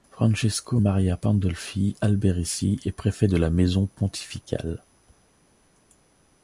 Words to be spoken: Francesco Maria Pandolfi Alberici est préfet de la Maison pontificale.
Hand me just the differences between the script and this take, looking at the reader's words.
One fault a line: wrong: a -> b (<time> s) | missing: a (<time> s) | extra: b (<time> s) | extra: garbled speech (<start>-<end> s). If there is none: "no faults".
no faults